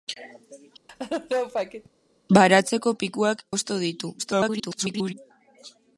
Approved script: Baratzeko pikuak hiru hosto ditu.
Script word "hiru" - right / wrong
wrong